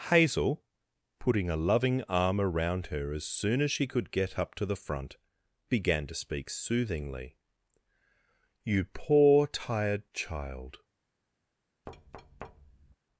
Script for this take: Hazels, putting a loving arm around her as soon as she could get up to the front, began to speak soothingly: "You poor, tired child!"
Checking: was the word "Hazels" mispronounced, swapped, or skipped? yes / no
yes